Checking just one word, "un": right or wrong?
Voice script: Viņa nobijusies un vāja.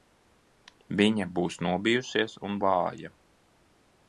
right